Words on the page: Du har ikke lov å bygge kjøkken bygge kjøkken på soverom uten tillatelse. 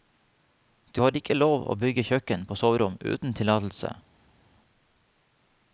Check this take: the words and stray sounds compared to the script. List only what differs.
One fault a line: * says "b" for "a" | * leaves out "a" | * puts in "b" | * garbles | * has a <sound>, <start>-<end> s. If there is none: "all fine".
* leaves out "bygge kjøkken"